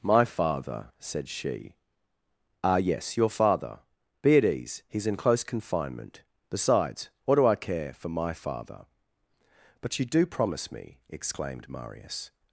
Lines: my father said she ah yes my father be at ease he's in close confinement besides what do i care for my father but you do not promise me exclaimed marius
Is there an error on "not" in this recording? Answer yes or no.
yes